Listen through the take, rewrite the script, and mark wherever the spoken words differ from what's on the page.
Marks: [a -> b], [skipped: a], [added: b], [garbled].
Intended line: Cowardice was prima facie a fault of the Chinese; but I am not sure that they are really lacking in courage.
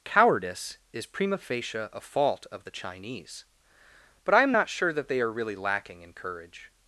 Cowardice [was -> is] prima facie a fault of the Chinese; but I am not sure that they are really lacking in courage.